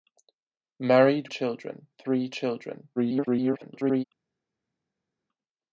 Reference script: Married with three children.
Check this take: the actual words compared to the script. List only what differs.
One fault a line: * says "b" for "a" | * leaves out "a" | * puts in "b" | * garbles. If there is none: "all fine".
* says "children" for "with"
* garbles